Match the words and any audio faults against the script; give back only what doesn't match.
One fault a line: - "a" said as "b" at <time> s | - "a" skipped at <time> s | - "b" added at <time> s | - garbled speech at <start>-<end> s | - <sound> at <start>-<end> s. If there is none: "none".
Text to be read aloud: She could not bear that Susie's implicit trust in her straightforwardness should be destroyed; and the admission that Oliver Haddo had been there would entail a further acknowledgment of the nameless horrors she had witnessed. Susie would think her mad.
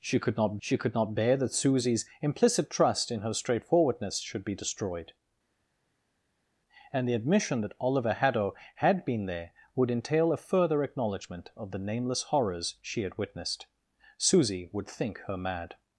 - "she could not" added at 0.6 s